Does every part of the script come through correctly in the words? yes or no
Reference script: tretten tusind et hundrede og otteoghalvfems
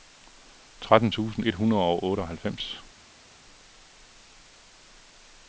yes